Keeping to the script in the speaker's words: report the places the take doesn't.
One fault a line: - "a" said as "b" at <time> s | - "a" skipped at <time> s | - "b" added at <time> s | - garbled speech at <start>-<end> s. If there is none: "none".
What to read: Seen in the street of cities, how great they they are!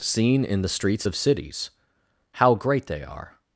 - "street" said as "streets" at 0.7 s
- "they" skipped at 3.0 s